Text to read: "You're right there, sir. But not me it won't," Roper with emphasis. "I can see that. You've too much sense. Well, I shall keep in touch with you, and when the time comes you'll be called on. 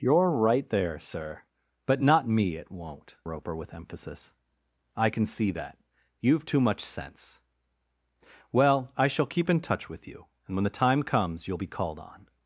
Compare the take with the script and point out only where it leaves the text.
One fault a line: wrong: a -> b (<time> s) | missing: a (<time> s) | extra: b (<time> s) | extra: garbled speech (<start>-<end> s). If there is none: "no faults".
no faults